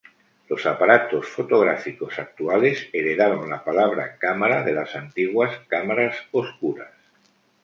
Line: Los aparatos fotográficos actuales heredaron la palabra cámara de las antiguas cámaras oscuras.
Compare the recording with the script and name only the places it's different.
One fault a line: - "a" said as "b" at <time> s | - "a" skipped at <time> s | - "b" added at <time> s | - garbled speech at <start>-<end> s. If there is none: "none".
none